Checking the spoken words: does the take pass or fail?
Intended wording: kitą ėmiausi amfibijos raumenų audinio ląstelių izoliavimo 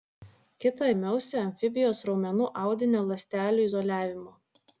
pass